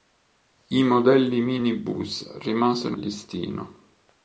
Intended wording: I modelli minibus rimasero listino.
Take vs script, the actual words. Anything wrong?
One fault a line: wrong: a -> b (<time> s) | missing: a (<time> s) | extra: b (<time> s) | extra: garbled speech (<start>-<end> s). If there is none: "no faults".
no faults